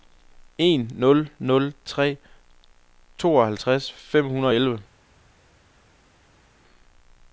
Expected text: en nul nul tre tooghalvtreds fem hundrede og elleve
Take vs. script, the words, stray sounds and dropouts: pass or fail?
pass